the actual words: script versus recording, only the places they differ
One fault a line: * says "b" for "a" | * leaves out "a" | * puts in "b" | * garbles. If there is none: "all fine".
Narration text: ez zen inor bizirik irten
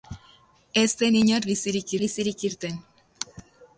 * puts in "bizirik"